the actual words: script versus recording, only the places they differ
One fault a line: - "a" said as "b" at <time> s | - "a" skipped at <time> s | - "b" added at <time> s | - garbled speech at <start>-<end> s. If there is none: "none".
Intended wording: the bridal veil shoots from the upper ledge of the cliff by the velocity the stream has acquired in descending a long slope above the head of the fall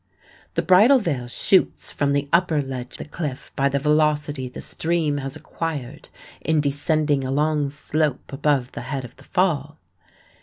- "of" skipped at 3.0 s